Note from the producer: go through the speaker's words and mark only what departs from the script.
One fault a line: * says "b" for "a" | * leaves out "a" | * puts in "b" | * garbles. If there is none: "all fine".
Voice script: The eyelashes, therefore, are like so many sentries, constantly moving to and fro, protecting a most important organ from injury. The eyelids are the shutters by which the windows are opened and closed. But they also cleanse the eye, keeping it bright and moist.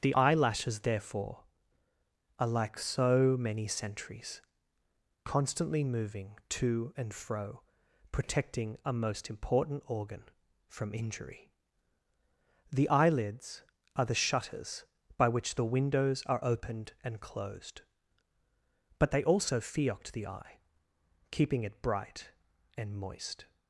* says "fiocked" for "cleanse"